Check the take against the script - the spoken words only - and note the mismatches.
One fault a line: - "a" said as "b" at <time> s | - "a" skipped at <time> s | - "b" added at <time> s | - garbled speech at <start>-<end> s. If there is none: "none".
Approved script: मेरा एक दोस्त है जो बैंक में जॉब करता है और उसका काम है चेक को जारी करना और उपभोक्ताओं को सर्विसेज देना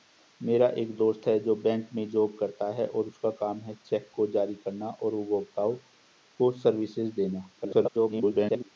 - garbled speech at 7.6-8.7 s